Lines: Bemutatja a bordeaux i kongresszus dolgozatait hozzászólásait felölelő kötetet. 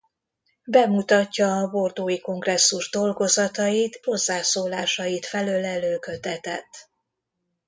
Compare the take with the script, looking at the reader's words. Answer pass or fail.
pass